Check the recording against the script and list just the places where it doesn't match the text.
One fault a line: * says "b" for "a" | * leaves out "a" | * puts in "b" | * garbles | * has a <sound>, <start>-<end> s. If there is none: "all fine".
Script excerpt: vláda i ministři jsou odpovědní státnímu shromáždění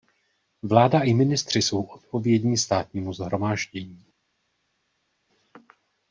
all fine